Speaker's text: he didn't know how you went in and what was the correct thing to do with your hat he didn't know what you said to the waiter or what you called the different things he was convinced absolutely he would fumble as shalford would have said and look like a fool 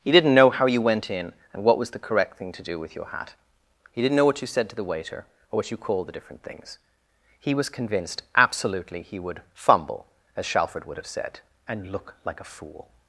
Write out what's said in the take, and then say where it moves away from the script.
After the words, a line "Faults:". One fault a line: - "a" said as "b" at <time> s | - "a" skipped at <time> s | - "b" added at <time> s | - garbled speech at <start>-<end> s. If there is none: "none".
he didn't know how you went in and what was the correct thing to do with your hat he didn't know what you said to the waiter or what you called the different things he was convinced absolutely he would fumble as shalford would have said and look like a fool
Faults:
none